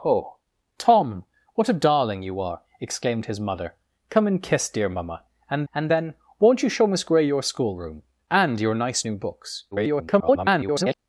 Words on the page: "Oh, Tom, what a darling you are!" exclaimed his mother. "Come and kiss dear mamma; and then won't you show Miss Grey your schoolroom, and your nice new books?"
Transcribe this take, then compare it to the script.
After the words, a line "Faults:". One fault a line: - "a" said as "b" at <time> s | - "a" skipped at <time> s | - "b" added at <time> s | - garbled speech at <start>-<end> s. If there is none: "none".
"Oh, Tom, what a darling you are!" exclaimed his mother. "Come and kiss dear mamma; and and then won't you show Miss Grey your schoolroom, and your nice new books?" [garbled]
Faults:
- "and" added at 5.7 s
- garbled speech at 9.7-10.9 s